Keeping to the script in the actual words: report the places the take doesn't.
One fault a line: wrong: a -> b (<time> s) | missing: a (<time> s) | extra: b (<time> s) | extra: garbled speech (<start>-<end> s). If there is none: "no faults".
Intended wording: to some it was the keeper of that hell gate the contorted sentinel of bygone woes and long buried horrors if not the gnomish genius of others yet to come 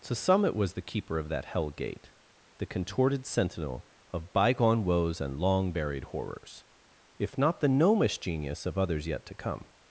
no faults